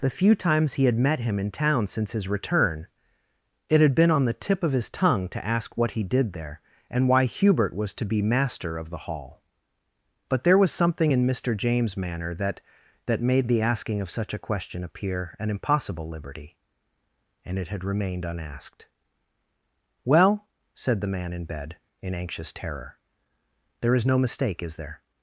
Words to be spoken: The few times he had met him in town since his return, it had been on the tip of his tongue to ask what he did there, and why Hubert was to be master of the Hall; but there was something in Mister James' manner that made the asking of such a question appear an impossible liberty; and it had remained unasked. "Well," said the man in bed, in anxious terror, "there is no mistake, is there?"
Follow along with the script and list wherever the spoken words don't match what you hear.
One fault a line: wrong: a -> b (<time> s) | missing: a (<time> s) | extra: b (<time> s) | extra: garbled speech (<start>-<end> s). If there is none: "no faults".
extra: that (13.1 s)